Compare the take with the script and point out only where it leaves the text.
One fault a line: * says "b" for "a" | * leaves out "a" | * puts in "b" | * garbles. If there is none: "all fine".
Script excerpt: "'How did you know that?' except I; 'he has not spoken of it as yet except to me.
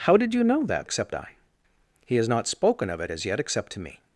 all fine